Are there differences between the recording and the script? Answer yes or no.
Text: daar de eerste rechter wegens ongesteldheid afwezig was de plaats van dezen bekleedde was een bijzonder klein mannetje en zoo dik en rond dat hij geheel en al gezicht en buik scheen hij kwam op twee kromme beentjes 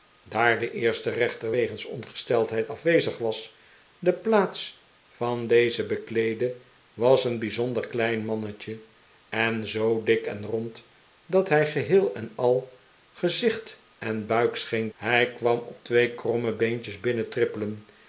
no